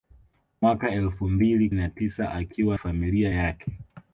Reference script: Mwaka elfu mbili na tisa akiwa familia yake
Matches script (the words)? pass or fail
pass